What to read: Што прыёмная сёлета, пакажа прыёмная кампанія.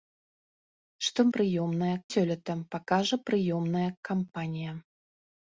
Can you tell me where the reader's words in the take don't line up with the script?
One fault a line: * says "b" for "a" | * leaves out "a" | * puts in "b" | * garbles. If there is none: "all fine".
all fine